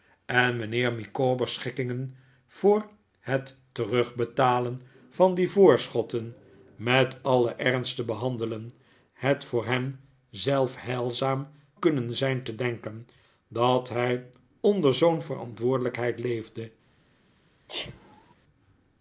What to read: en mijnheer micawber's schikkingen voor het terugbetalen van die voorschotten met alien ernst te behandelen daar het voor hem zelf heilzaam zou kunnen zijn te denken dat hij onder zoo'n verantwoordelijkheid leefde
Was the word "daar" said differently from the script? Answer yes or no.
yes